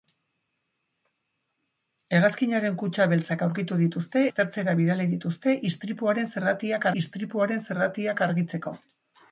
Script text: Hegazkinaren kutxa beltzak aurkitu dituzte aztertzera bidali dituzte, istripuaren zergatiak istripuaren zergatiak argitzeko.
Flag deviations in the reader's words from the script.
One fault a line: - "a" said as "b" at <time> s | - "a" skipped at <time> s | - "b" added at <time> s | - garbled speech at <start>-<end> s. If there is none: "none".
none